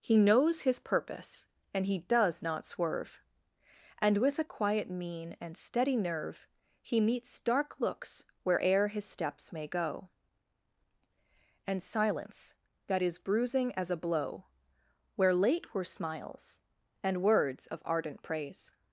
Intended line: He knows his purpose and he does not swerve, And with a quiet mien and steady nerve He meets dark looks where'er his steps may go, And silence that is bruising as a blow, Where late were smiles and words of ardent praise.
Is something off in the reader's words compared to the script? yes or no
no